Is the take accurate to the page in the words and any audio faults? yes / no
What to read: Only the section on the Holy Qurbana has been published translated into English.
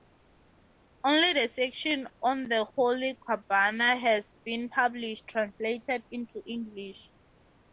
yes